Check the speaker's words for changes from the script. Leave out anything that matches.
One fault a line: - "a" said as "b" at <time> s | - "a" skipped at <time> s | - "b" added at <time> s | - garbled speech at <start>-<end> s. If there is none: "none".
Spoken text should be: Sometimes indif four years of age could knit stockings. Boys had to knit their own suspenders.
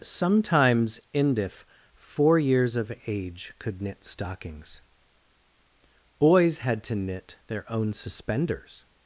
none